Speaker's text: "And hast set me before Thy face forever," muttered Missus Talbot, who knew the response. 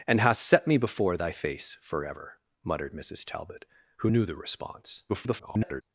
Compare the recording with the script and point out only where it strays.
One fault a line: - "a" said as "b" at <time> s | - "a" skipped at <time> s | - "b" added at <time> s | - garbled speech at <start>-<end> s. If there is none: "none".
- garbled speech at 5.1-5.8 s